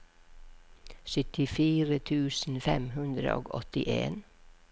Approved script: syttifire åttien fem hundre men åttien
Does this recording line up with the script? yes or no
no